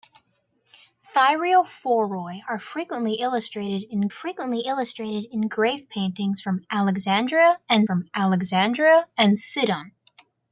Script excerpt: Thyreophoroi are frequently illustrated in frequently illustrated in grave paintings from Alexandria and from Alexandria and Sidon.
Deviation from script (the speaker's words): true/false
false